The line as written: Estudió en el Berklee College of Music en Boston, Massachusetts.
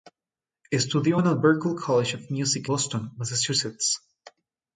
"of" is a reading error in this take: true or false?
false